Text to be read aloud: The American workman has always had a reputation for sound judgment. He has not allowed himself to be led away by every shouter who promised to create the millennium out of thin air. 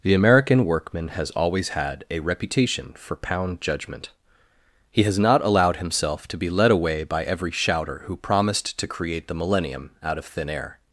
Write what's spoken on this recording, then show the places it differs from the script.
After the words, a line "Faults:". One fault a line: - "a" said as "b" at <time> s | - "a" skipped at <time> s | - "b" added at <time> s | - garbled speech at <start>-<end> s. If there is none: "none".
The American workman has always had a reputation for pound judgment. He has not allowed himself to be led away by every shouter who promised to create the millennium out of thin air.
Faults:
- "sound" said as "pound" at 3.1 s